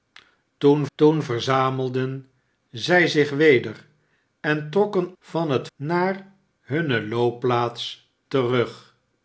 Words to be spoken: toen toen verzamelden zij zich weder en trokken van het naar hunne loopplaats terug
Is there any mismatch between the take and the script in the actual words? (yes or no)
no